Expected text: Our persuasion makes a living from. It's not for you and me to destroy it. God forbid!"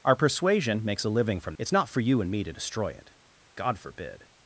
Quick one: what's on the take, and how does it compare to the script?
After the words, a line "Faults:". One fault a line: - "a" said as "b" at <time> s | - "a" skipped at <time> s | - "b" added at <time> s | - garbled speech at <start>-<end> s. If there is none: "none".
Our persuasion makes a living from. It's not for you and me to destroy it. God forbid!"
Faults:
none